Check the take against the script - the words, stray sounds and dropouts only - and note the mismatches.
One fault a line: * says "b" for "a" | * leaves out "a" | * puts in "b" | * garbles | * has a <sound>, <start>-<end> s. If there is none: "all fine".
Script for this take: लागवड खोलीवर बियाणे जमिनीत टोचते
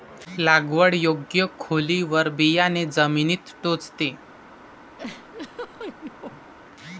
* puts in "योग्य"
* has a laugh, 5.0-6.5 s